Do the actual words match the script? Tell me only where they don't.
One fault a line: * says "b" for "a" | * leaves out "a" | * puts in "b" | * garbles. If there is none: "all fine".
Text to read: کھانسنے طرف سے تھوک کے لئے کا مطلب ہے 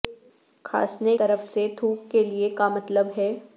all fine